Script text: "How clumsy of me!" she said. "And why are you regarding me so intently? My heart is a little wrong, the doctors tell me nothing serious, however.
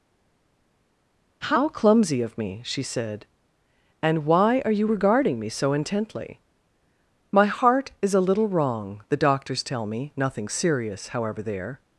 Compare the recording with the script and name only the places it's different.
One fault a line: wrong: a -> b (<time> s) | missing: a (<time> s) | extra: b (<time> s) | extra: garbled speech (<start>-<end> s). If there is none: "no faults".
extra: There (11.4 s)